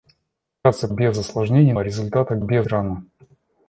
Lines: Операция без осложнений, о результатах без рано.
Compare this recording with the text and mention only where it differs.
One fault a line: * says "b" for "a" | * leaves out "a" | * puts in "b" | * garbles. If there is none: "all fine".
all fine